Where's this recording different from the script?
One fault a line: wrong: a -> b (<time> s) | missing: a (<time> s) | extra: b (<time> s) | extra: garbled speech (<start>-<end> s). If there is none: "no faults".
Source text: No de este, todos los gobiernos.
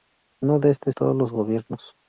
no faults